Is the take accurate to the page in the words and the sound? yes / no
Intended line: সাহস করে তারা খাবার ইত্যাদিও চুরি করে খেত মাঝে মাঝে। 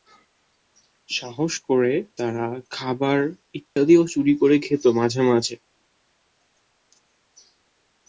no